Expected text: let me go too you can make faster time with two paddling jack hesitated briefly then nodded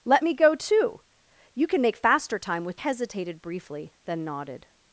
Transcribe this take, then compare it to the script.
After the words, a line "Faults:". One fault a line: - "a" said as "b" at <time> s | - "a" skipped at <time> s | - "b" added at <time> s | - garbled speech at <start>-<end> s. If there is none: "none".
let me go too you can make faster time with hesitated briefly then nodded
Faults:
- "two paddling jack" skipped at 2.8 s